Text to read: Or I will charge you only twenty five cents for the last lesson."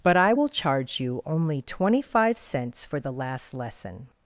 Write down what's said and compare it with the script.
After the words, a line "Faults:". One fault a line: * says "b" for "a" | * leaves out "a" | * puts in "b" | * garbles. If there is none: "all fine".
But I will charge you only twenty five cents for the last lesson."
Faults:
* says "But" for "Or"